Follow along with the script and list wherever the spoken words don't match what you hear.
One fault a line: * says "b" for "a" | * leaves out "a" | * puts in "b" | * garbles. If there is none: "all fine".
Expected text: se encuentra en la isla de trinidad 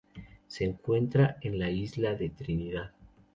all fine